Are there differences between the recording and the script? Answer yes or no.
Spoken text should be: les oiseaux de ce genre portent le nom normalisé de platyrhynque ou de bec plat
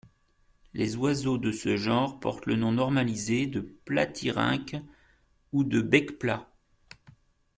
no